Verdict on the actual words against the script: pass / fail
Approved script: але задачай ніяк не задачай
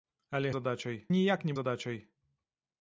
pass